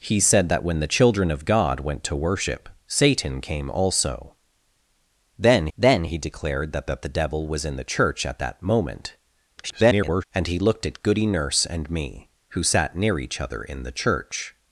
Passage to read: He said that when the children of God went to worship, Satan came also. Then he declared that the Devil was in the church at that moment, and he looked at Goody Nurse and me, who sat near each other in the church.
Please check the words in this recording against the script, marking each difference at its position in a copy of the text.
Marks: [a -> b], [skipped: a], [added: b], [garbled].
He said that when the children of God went to worship, Satan came also. Then [added: then] he declared that [added: that] the Devil was in the church at that moment, [garbled] and he looked at Goody Nurse and me, who sat near each other in the church.